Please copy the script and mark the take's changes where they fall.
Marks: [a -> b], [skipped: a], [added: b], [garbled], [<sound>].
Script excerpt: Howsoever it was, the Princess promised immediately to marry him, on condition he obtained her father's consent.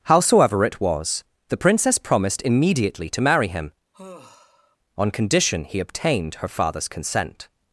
Howsoever it was, the Princess promised immediately to marry him, [sigh] on condition he obtained her father's consent.